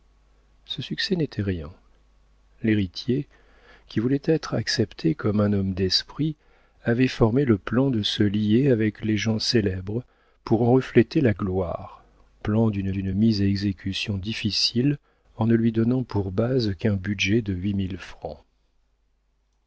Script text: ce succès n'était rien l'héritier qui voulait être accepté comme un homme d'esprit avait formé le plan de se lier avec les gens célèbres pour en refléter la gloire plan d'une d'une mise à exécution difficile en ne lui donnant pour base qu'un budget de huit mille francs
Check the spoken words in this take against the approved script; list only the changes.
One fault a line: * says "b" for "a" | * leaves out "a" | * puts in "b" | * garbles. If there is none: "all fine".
all fine